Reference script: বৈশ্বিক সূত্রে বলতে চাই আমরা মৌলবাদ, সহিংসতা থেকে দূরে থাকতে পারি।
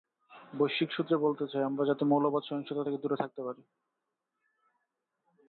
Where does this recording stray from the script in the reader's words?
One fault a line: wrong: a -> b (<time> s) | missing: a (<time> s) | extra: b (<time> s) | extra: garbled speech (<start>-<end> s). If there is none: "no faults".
extra: যাতে (1.9 s)